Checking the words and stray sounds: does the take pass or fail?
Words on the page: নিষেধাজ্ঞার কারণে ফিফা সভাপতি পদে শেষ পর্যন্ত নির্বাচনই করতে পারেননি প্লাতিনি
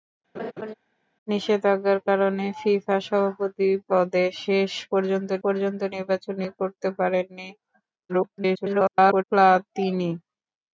fail